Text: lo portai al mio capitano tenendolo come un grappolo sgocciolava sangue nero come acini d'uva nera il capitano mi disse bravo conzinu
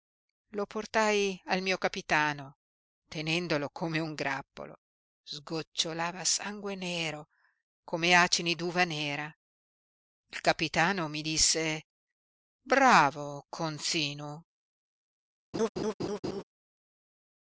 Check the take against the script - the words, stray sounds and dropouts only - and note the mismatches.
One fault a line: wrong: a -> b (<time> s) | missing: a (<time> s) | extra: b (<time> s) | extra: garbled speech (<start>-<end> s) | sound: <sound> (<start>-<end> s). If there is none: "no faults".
sound: laugh (15.5-16.4 s)